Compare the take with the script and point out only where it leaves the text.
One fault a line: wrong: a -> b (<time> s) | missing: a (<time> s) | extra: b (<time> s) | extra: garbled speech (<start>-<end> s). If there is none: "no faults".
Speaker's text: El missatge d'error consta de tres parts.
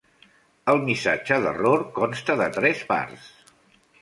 no faults